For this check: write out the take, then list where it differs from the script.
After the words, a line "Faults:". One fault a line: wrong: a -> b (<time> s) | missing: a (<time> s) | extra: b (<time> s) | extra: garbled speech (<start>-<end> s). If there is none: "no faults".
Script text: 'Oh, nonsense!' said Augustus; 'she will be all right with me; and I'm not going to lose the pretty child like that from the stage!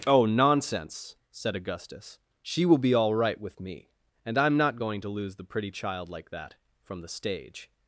'Oh, nonsense!' said Augustus; 'she will be all right with me; and I'm not going to lose the pretty child like that from the stage!
Faults:
no faults